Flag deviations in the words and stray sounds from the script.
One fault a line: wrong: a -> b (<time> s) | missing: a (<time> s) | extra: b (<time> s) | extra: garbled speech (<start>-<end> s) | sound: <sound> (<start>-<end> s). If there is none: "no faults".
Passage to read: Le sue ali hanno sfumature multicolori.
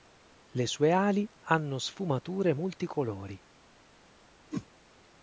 sound: whoosh (4.5-4.7 s)